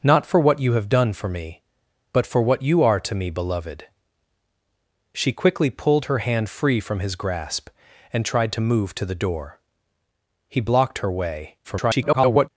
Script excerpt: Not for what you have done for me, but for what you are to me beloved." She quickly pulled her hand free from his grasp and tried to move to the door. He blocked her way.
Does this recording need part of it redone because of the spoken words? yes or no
yes